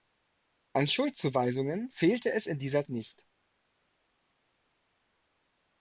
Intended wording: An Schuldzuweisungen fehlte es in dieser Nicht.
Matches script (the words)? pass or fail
pass